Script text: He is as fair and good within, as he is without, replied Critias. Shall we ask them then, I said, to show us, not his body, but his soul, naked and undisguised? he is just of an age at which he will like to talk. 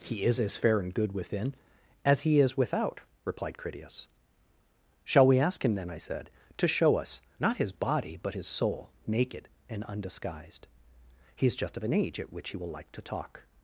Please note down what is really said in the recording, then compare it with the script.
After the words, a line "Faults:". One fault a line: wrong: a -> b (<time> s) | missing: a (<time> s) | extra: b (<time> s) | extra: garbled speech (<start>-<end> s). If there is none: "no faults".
He is as fair and good within, as he is without, replied Critias. Shall we ask him then, I said, to show us, not his body, but his soul, naked and undisguised? he is just of an age at which he will like to talk.
Faults:
wrong: them -> him (5.6 s)